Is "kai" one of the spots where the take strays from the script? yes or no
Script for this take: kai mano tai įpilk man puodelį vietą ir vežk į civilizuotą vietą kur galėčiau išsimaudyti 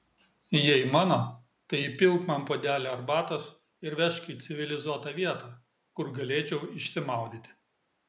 yes